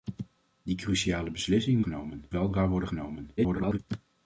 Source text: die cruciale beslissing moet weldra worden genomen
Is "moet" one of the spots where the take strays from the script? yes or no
yes